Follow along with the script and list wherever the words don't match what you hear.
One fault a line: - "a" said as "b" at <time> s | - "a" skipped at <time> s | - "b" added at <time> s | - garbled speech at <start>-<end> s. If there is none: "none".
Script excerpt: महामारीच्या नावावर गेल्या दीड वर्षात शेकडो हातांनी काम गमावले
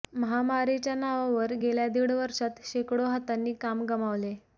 none